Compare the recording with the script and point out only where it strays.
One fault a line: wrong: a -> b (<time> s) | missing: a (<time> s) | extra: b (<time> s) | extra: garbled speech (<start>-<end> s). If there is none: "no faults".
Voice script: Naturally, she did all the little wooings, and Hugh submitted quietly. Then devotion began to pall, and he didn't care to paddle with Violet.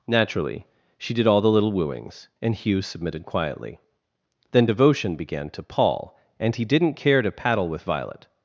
no faults